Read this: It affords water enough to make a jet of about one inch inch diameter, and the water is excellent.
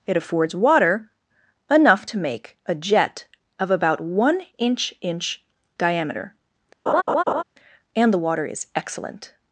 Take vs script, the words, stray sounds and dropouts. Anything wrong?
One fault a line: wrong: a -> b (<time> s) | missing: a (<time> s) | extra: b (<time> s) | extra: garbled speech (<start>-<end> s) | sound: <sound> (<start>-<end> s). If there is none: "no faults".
sound: laugh (6.9-7.4 s)